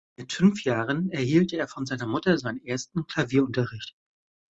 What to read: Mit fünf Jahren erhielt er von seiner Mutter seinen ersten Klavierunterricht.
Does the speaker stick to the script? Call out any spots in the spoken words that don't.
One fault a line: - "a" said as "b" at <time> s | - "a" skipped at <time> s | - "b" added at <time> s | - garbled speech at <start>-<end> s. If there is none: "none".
none